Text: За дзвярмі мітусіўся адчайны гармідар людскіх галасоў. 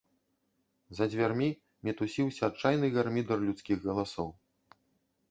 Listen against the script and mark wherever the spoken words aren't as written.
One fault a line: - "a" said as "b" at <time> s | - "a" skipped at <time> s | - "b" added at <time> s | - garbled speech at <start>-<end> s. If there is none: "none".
none